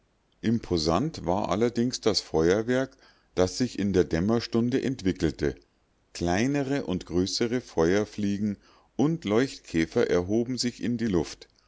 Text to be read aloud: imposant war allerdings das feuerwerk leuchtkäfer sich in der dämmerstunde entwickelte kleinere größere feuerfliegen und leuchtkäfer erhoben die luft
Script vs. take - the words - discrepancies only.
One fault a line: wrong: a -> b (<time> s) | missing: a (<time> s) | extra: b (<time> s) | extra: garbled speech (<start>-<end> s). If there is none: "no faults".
wrong: leuchtkäfer -> das (3.4 s)
extra: und (6.8 s)
extra: sich in (10.6 s)